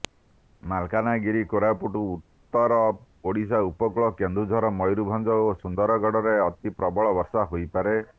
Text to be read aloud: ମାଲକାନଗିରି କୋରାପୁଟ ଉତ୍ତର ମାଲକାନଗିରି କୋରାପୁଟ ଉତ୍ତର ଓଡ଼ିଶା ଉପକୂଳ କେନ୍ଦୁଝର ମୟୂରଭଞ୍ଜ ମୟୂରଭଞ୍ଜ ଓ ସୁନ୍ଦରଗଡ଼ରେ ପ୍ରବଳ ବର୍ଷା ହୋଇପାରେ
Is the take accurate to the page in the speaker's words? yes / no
no